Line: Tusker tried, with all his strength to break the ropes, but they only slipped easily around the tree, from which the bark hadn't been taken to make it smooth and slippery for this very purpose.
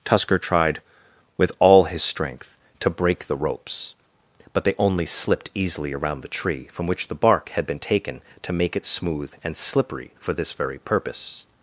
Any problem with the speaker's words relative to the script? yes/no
yes